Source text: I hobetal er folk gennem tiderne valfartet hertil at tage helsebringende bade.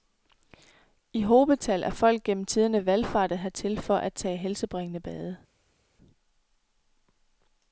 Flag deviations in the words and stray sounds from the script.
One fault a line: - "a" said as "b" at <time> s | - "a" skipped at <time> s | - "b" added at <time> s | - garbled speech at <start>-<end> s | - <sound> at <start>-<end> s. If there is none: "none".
- "for" added at 3.8 s